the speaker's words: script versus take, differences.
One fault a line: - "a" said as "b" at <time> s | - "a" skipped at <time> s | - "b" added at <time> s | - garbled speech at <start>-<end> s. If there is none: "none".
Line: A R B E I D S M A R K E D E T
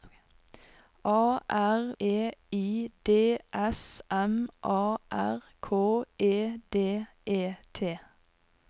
- "B" skipped at 1.9 s